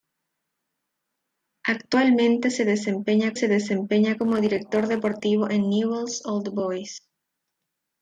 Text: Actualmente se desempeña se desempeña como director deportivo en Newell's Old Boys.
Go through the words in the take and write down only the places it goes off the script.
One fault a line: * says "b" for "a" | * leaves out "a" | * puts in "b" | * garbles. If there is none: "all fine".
all fine